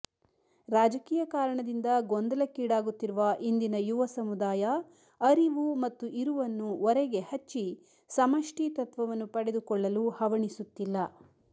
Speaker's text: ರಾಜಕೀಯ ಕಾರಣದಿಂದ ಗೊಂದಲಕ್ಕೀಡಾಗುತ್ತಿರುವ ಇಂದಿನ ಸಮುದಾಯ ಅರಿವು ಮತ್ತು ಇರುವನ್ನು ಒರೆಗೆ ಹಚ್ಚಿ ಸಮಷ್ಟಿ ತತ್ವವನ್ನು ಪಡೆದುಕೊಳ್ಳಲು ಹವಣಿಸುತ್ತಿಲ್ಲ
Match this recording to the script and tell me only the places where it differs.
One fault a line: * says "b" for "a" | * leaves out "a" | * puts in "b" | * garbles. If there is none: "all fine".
* puts in "ಯುವ"